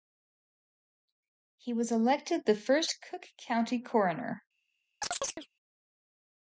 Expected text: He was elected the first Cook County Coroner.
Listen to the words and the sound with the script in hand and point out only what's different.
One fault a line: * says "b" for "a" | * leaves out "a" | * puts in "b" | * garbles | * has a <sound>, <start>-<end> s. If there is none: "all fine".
* has a chirp, 5.0-5.5 s